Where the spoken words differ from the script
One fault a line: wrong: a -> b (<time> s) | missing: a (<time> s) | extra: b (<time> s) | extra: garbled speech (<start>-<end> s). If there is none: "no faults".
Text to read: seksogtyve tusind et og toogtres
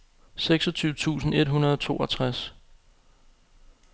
extra: hundrede (1.5 s)